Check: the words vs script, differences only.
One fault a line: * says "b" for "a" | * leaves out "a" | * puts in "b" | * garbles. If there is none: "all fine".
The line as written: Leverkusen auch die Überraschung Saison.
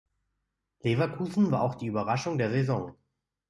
* puts in "war"
* puts in "der"